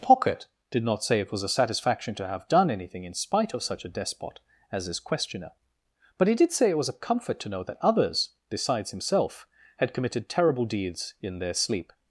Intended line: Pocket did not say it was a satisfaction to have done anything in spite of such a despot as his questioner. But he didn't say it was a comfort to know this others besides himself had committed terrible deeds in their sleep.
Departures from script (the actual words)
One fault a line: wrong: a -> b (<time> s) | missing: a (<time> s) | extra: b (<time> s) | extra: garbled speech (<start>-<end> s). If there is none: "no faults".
wrong: didn't -> did (6.3 s)
wrong: this -> that (7.6 s)